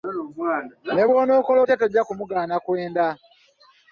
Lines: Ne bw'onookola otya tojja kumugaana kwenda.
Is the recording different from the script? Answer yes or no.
no